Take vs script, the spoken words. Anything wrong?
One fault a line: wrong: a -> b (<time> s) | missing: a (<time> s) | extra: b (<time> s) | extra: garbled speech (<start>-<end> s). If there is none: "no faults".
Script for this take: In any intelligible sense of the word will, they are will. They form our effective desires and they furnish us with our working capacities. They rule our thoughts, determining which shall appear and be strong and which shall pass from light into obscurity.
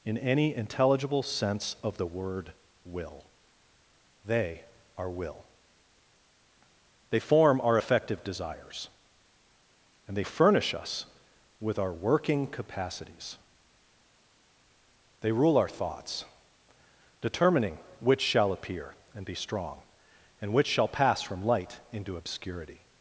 no faults